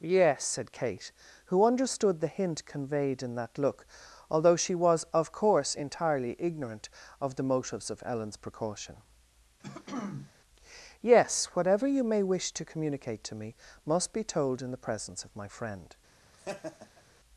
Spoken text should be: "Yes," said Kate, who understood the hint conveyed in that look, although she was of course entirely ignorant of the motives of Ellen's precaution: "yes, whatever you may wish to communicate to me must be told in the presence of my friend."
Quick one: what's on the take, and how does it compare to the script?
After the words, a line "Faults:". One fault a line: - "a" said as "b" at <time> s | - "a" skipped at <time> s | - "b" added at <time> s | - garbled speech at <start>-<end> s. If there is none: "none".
"Yes," said Kate, who understood the hint conveyed in that look, although she was of course entirely ignorant of the motives of Ellen's precaution: "yes, whatever you may wish to communicate to me must be told in the presence of my friend."
Faults:
none